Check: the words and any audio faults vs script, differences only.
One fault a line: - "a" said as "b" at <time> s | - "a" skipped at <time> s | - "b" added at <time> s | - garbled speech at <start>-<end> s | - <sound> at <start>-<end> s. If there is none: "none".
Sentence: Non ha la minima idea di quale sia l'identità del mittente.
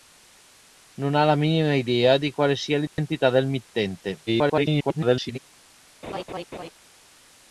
- dropout at 2.9-3.0 s
- garbled speech at 4.3-5.4 s
- laugh at 6.0-6.7 s